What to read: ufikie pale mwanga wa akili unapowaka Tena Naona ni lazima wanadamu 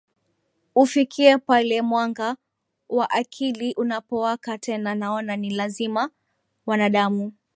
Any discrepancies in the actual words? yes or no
no